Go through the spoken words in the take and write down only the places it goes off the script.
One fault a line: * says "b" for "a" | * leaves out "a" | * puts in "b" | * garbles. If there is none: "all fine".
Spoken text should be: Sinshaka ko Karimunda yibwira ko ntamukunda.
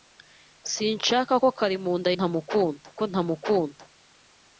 * says "ntamukunda" for "yibwira"